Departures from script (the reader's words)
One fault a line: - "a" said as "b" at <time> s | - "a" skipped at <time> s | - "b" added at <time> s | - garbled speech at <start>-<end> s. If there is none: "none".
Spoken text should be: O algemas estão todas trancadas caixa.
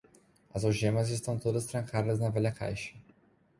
- "O" said as "As" at 0.5 s
- "na velha" added at 2.2 s